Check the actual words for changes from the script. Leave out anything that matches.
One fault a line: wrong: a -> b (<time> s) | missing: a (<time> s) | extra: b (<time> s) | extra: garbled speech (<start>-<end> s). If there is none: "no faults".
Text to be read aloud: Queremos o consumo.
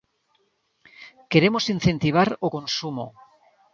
extra: incentivar (1.8 s)